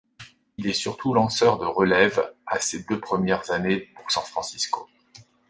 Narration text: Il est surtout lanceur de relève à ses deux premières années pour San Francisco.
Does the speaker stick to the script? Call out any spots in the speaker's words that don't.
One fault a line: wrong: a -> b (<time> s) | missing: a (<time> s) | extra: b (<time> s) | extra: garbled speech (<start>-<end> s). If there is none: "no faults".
no faults